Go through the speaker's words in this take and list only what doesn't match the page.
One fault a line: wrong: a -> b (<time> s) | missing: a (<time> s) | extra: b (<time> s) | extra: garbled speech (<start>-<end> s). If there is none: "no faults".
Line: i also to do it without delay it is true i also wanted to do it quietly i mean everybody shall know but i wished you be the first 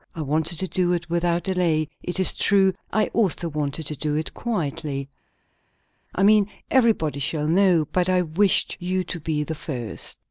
wrong: also -> wanted (0.2 s)
extra: to (9.0 s)